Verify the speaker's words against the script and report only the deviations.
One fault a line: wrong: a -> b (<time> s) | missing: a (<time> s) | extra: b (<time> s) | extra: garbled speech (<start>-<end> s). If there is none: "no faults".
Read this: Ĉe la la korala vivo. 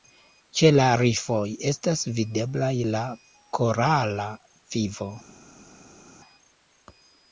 extra: rifoj estas videblaj (1.0 s)